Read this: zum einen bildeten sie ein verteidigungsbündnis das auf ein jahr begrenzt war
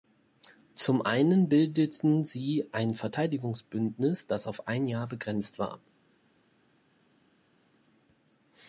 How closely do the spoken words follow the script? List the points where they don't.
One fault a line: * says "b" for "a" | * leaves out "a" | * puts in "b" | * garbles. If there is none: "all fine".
all fine